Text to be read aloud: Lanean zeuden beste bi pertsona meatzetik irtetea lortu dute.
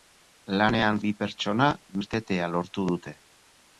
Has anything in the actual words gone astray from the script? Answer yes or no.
yes